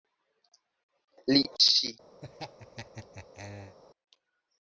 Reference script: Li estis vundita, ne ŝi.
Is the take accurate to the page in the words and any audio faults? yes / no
no